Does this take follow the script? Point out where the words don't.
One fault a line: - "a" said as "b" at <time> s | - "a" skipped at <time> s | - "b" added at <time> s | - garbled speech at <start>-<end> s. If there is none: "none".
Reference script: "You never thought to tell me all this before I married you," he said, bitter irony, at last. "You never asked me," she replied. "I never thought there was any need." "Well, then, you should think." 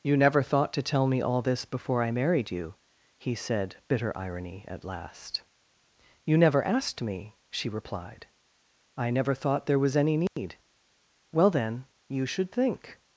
none